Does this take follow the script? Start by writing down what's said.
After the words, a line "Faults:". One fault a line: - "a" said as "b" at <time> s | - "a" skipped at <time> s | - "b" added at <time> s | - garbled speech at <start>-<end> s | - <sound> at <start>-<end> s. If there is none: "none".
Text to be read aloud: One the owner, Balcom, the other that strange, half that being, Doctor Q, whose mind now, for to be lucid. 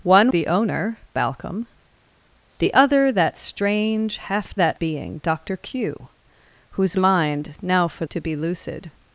One the owner, Balcom, the other that strange, half that being, Doctor Q, whose mind now, for to be lucid.
Faults:
none